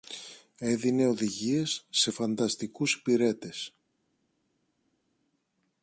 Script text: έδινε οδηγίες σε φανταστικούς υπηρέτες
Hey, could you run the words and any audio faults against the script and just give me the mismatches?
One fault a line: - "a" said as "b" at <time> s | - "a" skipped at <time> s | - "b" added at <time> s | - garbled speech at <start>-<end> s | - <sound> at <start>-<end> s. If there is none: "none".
none